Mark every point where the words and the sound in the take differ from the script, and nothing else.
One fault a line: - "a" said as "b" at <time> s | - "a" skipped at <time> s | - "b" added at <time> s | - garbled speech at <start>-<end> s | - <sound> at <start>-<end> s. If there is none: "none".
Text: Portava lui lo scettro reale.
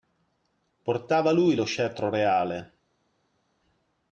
none